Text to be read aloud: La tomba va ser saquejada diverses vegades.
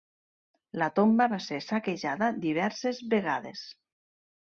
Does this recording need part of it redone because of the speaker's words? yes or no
no